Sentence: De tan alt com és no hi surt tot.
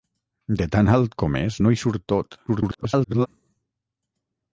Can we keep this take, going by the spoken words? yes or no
no